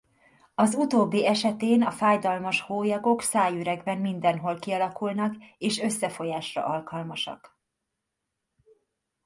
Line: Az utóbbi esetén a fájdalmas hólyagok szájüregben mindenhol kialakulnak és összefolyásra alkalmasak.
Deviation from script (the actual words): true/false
false